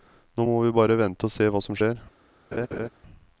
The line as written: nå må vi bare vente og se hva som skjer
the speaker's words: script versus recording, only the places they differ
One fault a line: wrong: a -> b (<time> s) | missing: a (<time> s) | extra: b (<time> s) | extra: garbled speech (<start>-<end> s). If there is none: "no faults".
no faults